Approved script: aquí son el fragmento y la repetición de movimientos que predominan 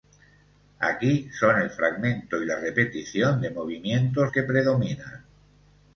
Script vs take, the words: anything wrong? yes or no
no